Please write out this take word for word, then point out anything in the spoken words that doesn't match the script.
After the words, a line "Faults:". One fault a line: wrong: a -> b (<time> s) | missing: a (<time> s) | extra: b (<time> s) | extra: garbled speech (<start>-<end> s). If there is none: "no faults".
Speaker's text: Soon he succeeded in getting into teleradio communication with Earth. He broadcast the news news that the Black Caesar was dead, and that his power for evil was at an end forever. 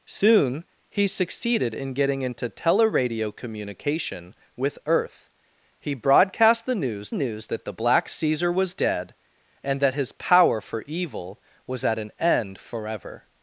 Soon he succeeded in getting into teleradio communication with Earth. He broadcast the news news that the Black Caesar was dead, and that his power for evil was at an end forever.
Faults:
no faults